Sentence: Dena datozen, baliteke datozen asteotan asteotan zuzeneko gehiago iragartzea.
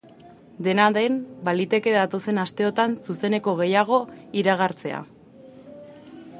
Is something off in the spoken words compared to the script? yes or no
yes